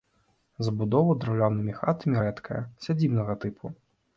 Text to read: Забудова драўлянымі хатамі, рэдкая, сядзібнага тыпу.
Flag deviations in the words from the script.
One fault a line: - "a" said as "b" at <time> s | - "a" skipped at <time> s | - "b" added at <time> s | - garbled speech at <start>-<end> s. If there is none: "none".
none